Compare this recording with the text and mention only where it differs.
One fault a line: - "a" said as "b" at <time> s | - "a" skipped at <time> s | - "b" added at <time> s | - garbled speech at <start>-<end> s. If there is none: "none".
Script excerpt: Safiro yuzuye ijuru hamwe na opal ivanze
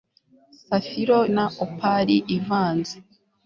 - "yuzuye ijuru hamwe" skipped at 1.2 s